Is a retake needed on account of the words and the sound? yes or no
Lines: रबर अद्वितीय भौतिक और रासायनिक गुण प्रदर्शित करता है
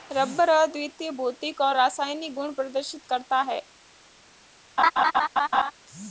yes